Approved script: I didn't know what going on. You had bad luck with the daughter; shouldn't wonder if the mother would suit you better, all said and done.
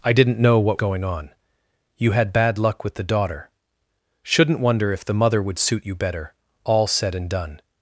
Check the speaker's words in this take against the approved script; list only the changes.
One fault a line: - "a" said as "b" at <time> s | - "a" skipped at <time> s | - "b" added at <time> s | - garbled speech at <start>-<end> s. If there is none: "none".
none